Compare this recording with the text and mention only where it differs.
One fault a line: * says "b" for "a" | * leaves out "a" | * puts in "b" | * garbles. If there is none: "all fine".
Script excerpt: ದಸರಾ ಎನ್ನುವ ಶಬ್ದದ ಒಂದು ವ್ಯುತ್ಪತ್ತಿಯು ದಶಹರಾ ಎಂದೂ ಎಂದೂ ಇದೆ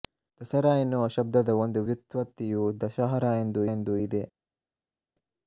all fine